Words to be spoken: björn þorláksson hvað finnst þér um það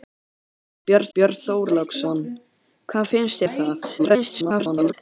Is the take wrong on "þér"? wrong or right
wrong